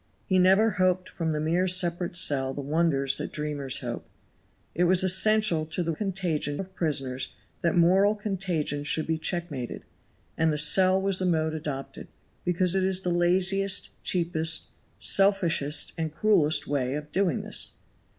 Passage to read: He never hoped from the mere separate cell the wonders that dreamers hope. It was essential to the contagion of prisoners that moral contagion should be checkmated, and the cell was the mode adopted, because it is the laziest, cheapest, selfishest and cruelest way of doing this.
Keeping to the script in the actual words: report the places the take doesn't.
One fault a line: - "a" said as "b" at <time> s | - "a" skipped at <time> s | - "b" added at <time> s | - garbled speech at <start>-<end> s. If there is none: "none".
none